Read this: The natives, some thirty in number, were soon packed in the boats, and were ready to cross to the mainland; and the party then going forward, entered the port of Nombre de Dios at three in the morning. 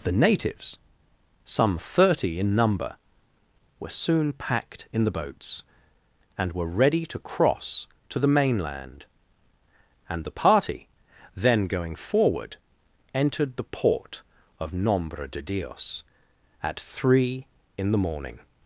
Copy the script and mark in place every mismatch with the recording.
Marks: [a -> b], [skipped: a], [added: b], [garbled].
The natives, some thirty in number, were soon packed in the boats, and were ready to cross to the mainland; and the party then going forward, entered the port of Nombre de Dios at three in the morning.